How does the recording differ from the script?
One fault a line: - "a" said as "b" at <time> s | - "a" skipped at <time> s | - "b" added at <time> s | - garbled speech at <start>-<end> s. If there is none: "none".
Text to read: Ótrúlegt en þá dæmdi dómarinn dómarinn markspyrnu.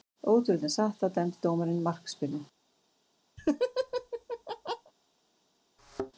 - "satt" added at 0.8 s
- "dómarinn" skipped at 1.8 s